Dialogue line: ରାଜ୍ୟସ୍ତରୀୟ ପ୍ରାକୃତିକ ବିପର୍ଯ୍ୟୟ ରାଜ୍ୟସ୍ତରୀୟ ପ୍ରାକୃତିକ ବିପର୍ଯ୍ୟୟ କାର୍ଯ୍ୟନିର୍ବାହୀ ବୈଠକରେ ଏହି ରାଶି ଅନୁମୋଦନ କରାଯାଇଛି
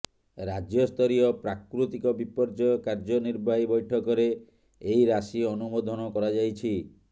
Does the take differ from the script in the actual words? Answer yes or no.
yes